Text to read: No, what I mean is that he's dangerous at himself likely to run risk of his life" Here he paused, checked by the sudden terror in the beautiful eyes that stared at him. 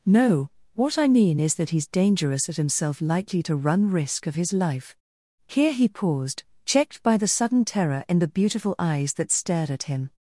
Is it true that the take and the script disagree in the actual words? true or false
false